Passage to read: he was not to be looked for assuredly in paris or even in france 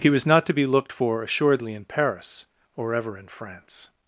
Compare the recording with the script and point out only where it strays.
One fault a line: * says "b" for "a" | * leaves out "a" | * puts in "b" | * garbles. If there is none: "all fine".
* says "ever" for "even"